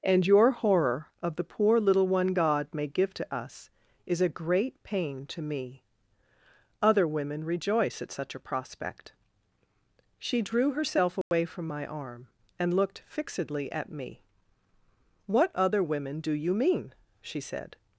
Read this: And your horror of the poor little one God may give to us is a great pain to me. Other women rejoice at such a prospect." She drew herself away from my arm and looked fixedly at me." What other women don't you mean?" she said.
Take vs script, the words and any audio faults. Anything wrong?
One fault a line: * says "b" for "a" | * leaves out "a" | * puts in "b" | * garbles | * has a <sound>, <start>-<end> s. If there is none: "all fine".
* has a dropout, 11.2-11.3 s
* says "do" for "don't"